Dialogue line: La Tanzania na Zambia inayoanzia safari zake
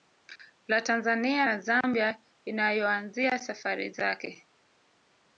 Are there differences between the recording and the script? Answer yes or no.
no